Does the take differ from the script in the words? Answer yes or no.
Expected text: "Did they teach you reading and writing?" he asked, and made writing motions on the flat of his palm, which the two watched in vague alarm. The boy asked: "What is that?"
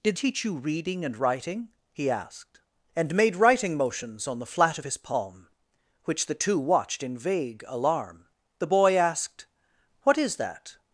yes